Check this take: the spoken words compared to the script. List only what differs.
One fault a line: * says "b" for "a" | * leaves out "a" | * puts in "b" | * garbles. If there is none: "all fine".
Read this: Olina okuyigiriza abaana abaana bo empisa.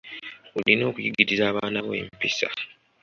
* leaves out "abaana"